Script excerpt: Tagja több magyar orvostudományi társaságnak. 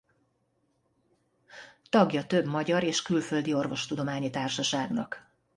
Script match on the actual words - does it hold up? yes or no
no